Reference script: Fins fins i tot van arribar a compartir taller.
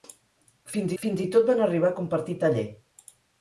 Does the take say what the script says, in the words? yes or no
yes